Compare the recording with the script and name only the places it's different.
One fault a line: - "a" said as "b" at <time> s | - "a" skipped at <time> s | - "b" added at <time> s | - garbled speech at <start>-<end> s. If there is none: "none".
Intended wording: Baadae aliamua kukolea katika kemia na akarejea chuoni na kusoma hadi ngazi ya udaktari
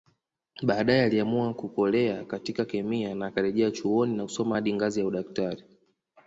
none